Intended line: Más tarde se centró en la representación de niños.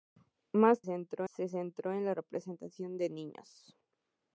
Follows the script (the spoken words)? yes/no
no